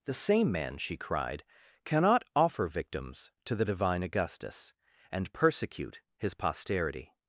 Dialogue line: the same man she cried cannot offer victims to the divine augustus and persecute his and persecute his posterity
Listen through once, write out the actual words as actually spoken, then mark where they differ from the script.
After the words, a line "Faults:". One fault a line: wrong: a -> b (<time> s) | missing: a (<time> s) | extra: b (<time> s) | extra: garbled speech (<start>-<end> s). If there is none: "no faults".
the same man she cried cannot offer victims to the divine augustus and persecute his posterity
Faults:
missing: and persecute his (6.3 s)